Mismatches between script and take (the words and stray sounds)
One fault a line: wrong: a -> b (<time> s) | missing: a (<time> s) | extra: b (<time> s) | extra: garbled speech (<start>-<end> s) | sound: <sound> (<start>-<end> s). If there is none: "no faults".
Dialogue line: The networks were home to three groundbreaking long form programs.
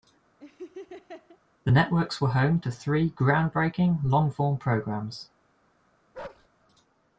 sound: laugh (0.4-1.4 s)
sound: bark (6.1-6.5 s)